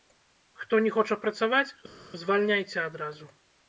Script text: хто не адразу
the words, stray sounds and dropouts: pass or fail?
fail